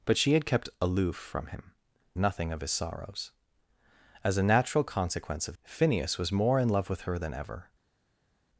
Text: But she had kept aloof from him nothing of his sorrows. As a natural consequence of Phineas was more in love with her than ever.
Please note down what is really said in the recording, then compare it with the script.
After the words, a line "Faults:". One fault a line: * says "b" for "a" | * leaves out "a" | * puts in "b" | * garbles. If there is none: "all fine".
But she had kept aloof from him nothing of his sorrows. As a natural consequence of Phineas was more in love with her than ever.
Faults:
all fine